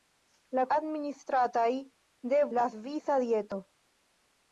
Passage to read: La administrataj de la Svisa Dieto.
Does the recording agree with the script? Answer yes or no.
yes